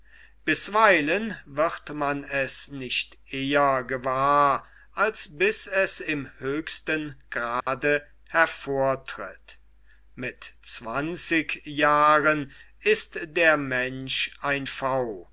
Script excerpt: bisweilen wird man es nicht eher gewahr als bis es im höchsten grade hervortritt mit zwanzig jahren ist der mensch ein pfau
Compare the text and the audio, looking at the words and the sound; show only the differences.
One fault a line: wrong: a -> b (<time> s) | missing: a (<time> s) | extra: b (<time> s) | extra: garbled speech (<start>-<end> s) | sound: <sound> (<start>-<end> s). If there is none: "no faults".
sound: dropout (7.6-7.7 s)